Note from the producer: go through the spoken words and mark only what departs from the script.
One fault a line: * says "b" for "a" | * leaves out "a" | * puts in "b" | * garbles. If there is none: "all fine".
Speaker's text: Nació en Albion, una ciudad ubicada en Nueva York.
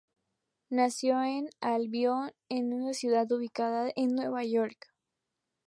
all fine